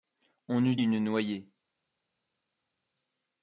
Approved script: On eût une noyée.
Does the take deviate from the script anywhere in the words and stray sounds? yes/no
no